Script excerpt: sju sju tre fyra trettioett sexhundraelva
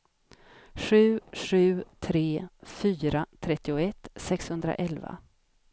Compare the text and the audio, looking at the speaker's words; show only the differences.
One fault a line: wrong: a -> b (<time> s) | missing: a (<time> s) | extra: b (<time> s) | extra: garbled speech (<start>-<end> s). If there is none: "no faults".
no faults